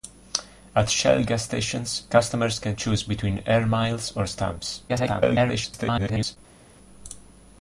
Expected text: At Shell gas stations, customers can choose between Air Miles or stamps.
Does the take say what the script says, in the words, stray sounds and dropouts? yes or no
no